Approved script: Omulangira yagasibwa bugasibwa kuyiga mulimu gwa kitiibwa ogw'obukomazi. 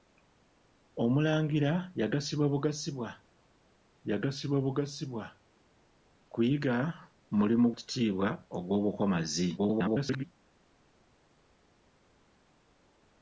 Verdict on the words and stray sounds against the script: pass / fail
fail